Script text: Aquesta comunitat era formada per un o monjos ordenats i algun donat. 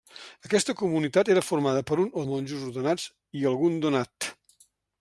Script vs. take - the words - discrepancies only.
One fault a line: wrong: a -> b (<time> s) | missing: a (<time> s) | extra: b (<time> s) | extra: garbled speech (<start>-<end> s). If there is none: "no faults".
no faults